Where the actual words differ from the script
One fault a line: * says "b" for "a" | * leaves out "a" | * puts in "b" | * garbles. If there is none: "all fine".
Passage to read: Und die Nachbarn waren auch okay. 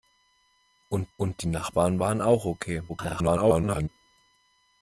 * puts in "und"
* garbles